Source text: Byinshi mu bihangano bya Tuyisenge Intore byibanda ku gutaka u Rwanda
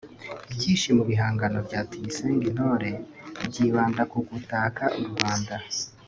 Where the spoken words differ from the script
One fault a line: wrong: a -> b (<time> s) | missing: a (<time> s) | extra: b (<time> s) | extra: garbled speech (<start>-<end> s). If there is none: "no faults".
no faults